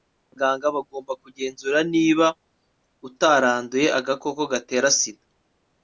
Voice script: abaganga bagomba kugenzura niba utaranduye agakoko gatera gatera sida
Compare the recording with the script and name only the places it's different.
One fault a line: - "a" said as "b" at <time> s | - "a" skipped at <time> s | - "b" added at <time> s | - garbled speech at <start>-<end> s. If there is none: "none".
- "gatera" skipped at 4.9 s